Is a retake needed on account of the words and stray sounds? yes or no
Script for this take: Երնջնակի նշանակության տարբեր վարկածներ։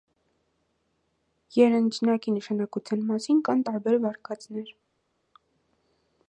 yes